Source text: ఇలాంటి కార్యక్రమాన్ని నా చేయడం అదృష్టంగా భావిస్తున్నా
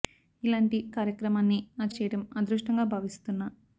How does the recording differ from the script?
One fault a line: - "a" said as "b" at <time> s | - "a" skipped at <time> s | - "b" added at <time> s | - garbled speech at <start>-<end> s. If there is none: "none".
none